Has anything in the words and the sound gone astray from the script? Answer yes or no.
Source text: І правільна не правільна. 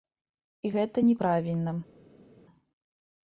yes